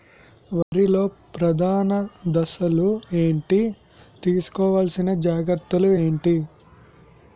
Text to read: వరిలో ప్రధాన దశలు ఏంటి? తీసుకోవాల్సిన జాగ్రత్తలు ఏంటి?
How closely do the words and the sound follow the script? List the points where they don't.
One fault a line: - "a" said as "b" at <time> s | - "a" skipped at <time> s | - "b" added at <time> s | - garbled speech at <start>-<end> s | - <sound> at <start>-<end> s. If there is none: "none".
- dropout at 0.6-0.7 s